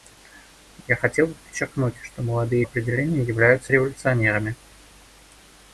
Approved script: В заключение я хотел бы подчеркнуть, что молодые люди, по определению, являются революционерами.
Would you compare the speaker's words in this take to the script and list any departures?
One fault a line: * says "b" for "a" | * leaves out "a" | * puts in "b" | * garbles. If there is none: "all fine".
* leaves out "заключение"
* leaves out "люди по"